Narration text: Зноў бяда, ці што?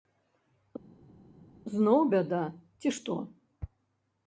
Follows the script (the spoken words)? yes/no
yes